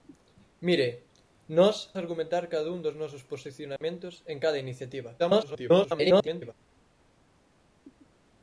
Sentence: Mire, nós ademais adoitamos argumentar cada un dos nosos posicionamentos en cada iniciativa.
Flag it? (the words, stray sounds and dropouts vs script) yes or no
yes